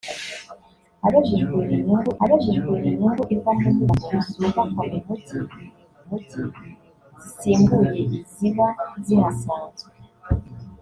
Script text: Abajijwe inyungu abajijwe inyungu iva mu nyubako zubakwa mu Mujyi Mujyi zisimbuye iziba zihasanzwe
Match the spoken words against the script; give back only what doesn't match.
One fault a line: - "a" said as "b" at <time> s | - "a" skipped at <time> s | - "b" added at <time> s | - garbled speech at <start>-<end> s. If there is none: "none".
none